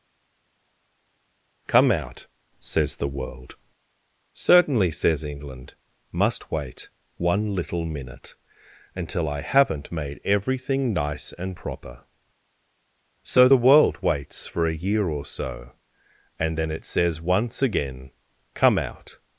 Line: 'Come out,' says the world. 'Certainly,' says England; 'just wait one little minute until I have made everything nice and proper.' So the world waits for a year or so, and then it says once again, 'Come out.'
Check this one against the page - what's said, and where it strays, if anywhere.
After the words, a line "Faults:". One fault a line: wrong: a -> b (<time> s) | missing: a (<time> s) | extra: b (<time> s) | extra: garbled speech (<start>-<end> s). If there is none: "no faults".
'Come out,' says the world. 'Certainly,' says England; 'must wait one little minute until I haven't made everything nice and proper.' So the world waits for a year or so, and then it says once again, 'Come out.'
Faults:
wrong: just -> must (6.1 s)
wrong: have -> haven't (9.4 s)